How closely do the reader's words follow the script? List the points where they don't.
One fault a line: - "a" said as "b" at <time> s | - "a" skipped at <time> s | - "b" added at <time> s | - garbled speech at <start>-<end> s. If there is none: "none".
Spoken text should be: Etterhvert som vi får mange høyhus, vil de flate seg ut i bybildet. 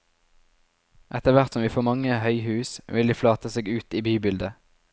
none